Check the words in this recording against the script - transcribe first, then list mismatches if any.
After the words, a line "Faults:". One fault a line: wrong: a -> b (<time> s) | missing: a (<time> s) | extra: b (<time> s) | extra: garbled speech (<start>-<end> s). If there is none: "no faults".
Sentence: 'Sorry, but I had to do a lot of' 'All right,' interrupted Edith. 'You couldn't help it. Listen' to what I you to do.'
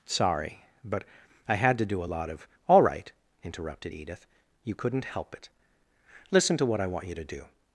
'Sorry, but I had to do a lot of' 'All right,' interrupted Edith. 'You couldn't help it. Listen' to what I want you to do.'
Faults:
extra: want (6.9 s)